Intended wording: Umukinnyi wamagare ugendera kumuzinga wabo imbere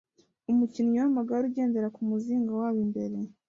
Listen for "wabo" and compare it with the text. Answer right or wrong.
right